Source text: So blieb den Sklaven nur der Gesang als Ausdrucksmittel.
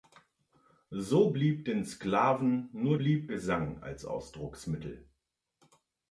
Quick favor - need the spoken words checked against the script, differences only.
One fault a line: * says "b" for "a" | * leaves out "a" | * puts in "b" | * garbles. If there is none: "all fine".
* says "blieb" for "der"